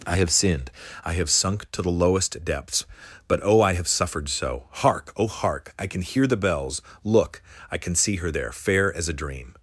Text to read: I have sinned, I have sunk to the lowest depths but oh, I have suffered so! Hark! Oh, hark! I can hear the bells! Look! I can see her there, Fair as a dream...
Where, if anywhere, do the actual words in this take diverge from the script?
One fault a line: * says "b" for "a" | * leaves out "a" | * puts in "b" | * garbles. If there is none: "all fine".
all fine